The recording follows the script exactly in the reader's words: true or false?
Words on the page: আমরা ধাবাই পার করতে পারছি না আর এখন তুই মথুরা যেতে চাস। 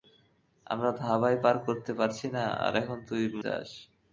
false